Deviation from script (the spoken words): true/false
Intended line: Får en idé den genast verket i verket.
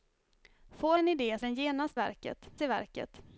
false